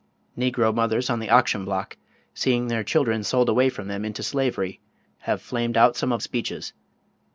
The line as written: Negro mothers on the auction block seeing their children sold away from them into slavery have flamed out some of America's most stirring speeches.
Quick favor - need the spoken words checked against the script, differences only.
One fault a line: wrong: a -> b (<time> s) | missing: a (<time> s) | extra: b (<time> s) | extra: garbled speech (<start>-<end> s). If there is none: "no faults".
missing: America's most stirring (6.2 s)